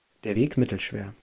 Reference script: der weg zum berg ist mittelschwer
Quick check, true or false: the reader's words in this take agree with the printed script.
false